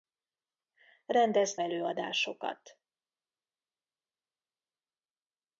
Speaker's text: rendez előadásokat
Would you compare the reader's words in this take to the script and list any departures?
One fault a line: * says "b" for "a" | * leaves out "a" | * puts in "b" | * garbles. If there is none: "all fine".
all fine